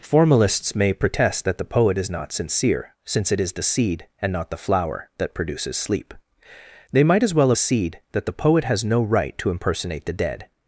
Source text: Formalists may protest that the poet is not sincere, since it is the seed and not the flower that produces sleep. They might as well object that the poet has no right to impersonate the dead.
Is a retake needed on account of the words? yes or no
yes